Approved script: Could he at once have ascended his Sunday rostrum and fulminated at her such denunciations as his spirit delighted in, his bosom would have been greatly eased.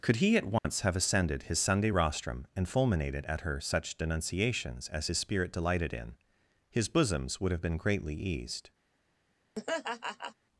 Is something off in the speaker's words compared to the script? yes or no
yes